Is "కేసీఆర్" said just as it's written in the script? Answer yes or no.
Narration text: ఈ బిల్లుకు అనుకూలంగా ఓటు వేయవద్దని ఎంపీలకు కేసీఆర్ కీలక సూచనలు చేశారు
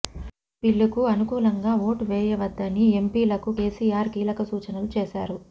yes